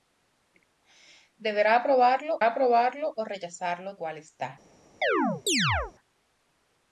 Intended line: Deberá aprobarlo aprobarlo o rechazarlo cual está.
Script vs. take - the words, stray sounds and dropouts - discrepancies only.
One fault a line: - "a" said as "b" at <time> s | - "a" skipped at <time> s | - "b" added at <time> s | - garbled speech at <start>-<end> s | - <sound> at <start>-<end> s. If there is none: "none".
- chirp at 5.0-5.9 s